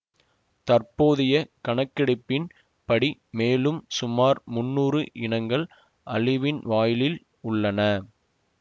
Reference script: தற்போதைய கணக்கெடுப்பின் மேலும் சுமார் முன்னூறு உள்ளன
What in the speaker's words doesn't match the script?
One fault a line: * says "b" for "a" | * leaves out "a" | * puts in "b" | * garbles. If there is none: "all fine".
* puts in "படி"
* puts in "இனங்கள் அழிவின் வாயிலில்"